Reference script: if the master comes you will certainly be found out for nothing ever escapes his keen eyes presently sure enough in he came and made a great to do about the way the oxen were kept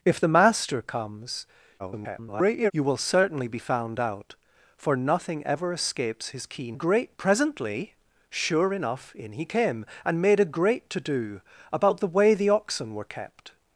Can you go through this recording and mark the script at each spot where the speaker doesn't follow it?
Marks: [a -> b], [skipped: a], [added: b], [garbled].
if the master comes [garbled] you will certainly be found out for nothing ever escapes his keen [eyes -> great] presently sure enough in he came and made a great to do about the way the oxen were kept